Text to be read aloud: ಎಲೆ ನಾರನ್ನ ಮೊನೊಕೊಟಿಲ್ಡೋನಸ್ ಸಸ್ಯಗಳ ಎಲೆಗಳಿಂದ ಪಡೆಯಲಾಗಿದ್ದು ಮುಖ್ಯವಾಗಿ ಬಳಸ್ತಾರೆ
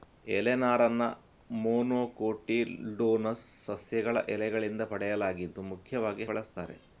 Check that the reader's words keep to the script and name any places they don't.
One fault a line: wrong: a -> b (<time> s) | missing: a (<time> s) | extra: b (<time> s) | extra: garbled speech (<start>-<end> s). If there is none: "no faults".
no faults